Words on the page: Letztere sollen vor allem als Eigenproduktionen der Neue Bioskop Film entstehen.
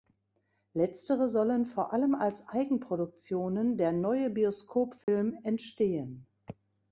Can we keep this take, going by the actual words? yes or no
yes